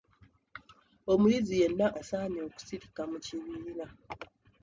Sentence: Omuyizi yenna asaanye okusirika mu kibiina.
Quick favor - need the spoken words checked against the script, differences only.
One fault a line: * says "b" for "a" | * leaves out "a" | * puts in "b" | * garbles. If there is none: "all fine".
all fine